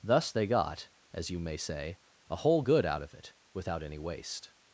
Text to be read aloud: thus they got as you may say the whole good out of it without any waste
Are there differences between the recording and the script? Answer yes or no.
yes